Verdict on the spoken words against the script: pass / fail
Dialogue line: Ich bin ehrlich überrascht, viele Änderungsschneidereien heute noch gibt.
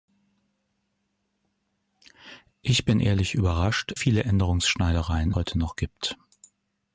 pass